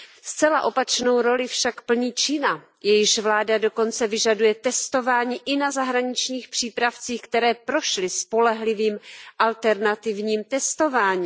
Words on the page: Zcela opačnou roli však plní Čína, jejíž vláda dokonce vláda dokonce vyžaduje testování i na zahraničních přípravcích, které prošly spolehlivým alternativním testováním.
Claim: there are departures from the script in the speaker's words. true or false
true